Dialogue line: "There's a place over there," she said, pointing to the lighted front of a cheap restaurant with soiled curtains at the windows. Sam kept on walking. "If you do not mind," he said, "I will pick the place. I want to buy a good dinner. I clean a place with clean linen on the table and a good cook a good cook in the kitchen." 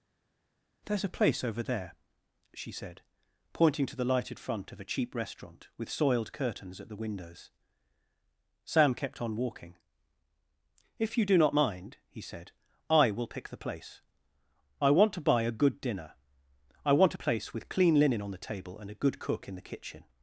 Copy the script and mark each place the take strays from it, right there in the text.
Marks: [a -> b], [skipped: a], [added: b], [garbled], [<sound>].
"There's a place over there," she said, pointing to the lighted front of a cheap restaurant with soiled curtains at the windows. Sam kept on walking. "If you do not mind," he said, "I will pick the place. I want to buy a good dinner. I [clean -> want] a place with clean linen on the table and a good cook [skipped: a good cook] in the kitchen."